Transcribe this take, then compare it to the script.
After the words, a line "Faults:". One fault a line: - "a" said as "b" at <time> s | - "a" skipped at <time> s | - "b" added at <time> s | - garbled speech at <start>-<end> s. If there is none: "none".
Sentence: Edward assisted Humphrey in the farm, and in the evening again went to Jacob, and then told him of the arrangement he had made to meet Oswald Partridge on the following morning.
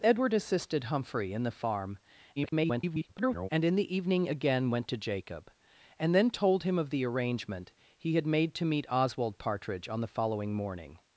Edward assisted Humphrey in the farm, [garbled] and in the evening again went to Jacob, and then told him of the arrangement he had made to meet Oswald Partridge on the following morning.
Faults:
- garbled speech at 2.4-3.5 s